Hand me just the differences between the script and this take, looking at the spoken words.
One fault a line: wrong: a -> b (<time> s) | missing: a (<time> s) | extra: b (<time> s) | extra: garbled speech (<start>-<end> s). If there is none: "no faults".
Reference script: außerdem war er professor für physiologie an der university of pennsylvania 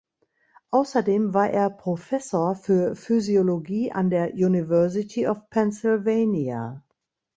no faults